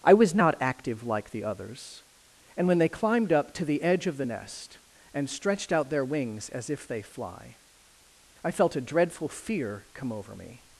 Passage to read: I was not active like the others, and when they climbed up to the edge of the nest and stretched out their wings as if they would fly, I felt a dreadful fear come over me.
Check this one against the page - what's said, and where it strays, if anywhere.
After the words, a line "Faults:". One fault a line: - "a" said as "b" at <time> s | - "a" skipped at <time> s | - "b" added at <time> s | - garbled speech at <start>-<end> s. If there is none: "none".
I was not active like the others, and when they climbed up to the edge of the nest and stretched out their wings as if they fly, I felt a dreadful fear come over me.
Faults:
- "would" skipped at 7.0 s